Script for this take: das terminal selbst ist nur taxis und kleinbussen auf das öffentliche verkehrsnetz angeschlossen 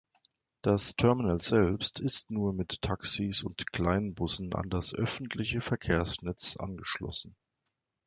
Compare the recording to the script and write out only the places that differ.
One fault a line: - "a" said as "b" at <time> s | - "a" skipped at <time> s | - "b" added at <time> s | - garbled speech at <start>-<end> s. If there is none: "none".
- "mit" added at 2.5 s
- "auf" said as "an" at 4.5 s